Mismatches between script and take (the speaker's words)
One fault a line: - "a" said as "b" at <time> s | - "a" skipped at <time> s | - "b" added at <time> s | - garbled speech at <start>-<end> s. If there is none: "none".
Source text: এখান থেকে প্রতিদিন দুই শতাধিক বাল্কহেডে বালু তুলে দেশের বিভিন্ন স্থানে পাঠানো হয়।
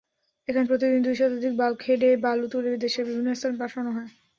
- "থেকে" skipped at 0.6 s